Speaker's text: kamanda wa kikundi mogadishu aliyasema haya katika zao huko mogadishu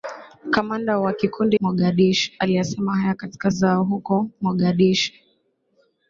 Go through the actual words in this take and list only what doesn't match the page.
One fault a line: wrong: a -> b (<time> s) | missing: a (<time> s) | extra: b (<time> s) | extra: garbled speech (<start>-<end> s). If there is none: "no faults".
no faults